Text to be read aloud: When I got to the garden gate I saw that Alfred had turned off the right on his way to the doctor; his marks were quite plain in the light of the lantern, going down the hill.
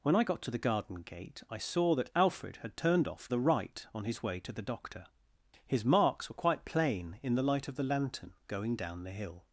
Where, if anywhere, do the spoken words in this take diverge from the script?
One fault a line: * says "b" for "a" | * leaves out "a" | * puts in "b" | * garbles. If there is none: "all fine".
all fine